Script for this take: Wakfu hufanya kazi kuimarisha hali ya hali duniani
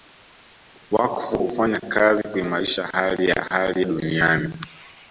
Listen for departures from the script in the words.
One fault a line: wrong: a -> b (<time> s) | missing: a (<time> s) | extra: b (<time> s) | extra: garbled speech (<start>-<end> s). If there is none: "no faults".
no faults